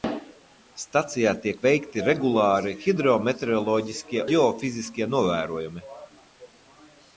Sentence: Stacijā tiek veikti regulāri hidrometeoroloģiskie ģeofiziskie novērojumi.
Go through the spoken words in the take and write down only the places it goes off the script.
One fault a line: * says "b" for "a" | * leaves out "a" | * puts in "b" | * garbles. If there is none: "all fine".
all fine